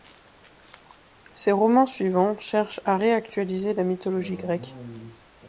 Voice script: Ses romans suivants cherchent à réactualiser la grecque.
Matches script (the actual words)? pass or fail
fail